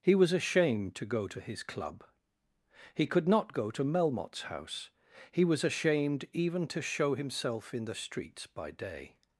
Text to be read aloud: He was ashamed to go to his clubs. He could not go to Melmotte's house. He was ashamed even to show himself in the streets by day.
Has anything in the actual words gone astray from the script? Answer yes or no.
yes